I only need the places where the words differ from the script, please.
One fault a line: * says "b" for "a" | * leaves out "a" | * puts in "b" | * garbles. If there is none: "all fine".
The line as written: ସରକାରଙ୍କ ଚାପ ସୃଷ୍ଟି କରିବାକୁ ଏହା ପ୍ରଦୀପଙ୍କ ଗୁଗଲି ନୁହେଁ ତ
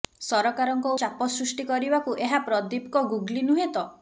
all fine